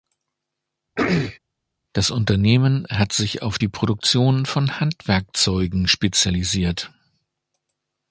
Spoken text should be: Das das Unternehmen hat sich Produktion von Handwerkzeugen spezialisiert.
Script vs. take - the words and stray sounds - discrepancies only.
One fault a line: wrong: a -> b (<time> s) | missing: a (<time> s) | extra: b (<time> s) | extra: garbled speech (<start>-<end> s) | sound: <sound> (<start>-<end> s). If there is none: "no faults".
sound: throat clearing (1.0-1.4 s)
missing: das (2.1 s)
extra: auf die (3.4 s)